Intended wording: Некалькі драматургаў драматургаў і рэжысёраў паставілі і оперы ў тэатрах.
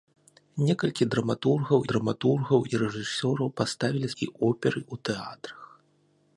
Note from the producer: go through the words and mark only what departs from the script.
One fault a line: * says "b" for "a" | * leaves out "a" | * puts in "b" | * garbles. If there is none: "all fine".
all fine